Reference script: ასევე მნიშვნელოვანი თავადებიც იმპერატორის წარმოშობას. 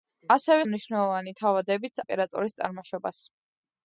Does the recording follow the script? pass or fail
pass